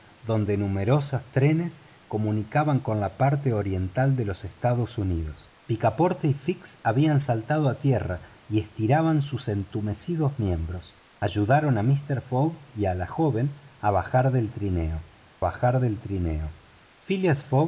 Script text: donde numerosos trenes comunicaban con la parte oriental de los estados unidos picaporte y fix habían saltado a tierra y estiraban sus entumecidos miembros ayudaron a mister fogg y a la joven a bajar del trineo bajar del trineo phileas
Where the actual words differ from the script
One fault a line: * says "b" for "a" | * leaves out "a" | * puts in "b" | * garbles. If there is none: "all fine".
all fine